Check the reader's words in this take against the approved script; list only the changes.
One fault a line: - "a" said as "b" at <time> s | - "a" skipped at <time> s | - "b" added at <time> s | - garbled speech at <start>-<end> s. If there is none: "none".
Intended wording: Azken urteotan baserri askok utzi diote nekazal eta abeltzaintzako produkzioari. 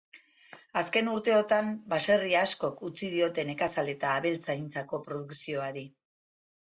none